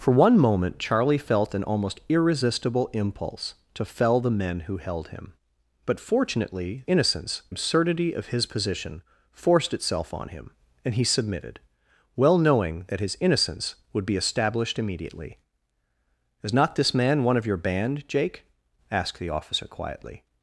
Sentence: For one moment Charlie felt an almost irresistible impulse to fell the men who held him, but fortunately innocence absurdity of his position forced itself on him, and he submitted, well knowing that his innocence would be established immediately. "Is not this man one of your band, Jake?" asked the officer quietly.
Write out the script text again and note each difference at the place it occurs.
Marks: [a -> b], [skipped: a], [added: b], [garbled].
For one moment Charlie felt an almost irresistible impulse to fell the men who held him, but fortunately innocence absurdity of his position forced itself on him, and he submitted, well knowing that his innocence would be established immediately. "Is not this man one of your band, Jake?" asked the officer quietly.